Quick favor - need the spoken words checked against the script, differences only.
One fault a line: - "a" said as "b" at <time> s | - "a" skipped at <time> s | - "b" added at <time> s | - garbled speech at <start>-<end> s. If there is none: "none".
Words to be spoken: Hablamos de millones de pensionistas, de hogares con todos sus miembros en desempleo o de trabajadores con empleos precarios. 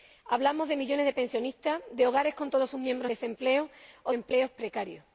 - "en" skipped at 3.1 s
- "de trabajadores con" skipped at 4.1 s